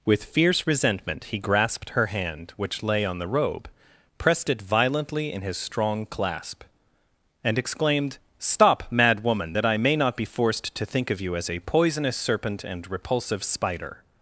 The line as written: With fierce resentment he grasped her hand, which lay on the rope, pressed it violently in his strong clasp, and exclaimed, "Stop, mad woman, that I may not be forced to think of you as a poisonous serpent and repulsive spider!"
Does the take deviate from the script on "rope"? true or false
true